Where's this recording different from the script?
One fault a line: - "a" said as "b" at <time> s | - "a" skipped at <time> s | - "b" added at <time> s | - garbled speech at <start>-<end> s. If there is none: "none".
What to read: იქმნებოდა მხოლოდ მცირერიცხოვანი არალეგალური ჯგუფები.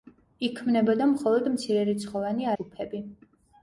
- "არალეგალური" skipped at 2.5 s